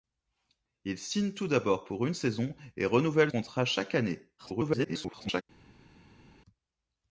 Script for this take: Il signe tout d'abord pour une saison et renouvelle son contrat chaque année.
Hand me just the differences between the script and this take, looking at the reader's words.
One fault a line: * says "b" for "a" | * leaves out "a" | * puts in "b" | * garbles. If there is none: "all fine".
* leaves out "son"
* garbles